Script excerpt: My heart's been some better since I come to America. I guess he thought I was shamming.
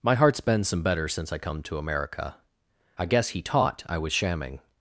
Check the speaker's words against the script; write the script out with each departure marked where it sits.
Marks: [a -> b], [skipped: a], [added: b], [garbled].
My heart's been some better since I come to America. I guess he [thought -> taught] I was shamming.